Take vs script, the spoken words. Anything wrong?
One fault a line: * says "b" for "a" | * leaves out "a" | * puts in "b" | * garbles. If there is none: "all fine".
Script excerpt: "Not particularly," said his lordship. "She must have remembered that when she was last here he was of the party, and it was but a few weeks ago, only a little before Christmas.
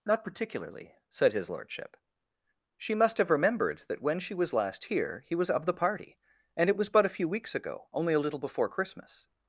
all fine